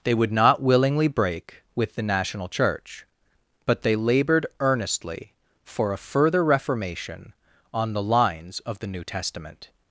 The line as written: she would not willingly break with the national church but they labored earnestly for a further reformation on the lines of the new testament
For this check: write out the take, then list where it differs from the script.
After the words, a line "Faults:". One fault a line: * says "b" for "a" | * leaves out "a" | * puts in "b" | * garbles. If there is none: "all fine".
they would not willingly break with the national church but they labored earnestly for a further reformation on the lines of the new testament
Faults:
* says "they" for "she"